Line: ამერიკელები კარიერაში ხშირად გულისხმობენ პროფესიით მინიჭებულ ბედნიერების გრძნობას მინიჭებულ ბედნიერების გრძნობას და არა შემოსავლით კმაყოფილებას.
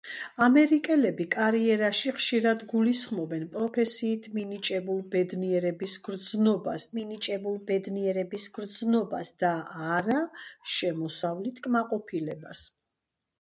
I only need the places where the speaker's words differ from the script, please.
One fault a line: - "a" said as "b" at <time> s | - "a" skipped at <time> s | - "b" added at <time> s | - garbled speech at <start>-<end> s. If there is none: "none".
none